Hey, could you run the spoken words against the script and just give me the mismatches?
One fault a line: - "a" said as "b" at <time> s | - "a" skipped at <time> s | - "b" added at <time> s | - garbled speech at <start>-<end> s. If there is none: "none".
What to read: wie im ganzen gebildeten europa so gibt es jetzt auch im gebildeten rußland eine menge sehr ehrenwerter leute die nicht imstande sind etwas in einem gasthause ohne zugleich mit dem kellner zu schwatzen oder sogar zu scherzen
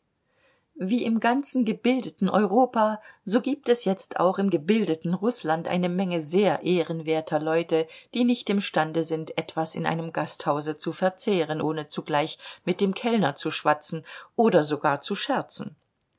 - "zu verzehren" added at 10.8 s